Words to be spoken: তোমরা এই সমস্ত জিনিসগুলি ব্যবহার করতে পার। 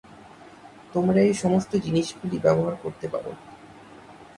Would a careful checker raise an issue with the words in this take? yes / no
no